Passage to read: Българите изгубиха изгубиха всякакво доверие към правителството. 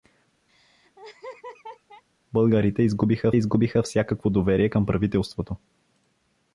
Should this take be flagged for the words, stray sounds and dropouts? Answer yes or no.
yes